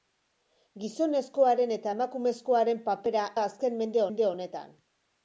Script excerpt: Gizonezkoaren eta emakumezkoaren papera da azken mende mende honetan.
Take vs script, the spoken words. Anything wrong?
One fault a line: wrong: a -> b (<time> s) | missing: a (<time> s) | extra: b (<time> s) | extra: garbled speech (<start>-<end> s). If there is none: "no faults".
no faults